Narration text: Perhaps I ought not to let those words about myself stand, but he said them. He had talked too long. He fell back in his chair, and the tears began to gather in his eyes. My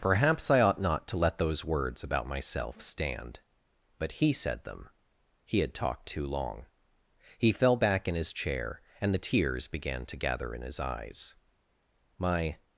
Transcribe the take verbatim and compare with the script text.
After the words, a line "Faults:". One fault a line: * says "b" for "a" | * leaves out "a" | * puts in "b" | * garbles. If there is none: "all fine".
Perhaps I ought not to let those words about myself stand, but he said them. He had talked too long. He fell back in his chair, and the tears began to gather in his eyes. My
Faults:
all fine